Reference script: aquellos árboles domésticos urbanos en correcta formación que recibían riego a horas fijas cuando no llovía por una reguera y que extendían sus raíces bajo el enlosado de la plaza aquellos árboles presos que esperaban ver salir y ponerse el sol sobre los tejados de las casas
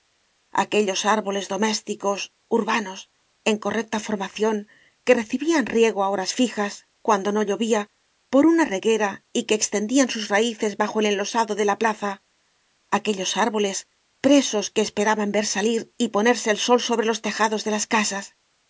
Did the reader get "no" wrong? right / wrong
right